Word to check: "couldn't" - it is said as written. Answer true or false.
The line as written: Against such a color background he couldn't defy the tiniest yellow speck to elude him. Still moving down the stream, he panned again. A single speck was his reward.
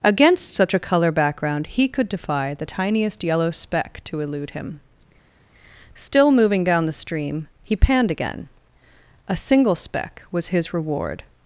false